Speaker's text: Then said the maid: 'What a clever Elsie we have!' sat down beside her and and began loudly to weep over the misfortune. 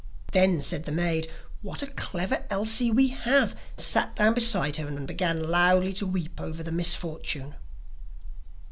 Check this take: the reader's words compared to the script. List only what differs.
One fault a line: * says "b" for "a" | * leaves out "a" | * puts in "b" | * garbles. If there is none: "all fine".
all fine